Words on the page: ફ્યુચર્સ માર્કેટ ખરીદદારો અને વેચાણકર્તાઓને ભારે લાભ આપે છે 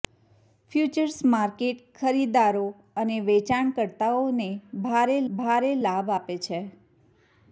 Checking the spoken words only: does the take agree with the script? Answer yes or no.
no